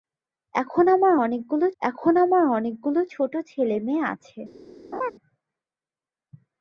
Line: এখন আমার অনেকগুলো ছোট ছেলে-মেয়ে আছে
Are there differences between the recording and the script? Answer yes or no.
yes